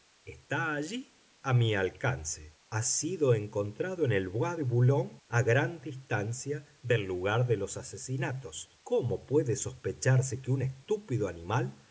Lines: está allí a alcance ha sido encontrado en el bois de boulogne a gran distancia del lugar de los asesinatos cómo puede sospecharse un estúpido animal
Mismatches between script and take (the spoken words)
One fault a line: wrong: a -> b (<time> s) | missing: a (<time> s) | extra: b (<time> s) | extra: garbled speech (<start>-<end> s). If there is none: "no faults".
extra: mi (1.5 s)
extra: que (10.4 s)